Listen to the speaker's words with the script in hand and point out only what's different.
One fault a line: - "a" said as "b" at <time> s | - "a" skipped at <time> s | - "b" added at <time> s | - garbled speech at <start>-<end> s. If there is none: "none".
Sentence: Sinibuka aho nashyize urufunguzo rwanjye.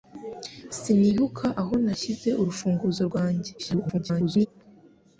- garbled speech at 3.6-4.5 s